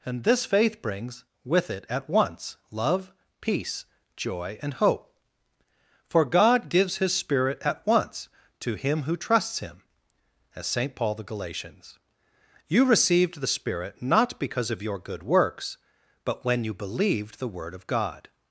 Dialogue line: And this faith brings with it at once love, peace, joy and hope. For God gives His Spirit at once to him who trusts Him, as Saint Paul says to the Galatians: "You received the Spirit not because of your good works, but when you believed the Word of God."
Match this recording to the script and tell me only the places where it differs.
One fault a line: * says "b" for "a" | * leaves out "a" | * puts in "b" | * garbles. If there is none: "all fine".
* leaves out "says to"